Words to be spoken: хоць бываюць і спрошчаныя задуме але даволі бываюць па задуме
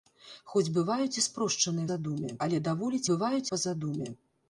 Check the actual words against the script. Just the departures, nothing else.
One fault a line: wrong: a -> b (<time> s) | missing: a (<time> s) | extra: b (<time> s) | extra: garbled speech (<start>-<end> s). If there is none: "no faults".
no faults